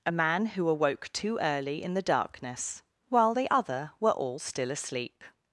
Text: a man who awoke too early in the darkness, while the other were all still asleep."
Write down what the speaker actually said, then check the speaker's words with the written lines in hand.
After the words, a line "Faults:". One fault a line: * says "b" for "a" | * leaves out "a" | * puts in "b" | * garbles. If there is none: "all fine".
a man who awoke too early in the darkness, while the other were all still asleep."
Faults:
all fine